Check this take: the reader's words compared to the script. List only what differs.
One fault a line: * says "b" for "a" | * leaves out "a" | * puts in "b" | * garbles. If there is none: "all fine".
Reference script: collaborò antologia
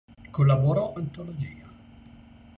all fine